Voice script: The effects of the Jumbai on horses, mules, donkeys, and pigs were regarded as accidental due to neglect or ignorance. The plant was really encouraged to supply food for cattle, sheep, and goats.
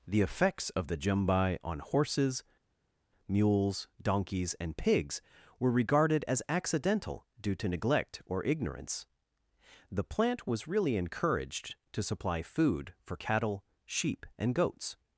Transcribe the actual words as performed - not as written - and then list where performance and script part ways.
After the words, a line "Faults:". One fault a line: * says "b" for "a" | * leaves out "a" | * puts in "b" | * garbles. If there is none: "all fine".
The effects of the Jumbai on horses, mules, donkeys, and pigs were regarded as accidental due to neglect or ignorance. The plant was really encouraged to supply food for cattle, sheep, and goats.
Faults:
all fine